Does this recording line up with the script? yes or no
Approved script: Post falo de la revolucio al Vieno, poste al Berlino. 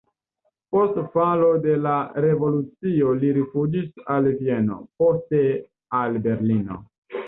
no